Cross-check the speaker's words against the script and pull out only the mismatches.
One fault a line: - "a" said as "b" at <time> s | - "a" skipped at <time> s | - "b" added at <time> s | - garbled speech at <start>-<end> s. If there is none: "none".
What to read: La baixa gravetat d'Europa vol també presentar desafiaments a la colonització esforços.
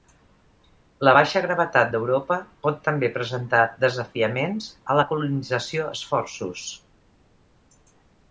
- "vol" said as "pot" at 2.7 s